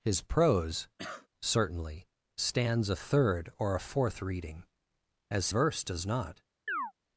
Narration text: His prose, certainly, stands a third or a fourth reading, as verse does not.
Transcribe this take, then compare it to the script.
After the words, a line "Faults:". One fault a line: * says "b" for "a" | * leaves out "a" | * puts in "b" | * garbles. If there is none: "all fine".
His prose, certainly, stands a third or a fourth reading, as verse does not.
Faults:
all fine